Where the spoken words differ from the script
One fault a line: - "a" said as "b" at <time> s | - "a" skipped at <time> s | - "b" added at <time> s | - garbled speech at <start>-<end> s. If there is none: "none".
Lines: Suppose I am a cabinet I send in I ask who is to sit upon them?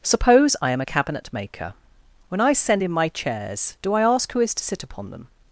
- "maker When" added at 1.3 s
- "my chairs do" added at 2.9 s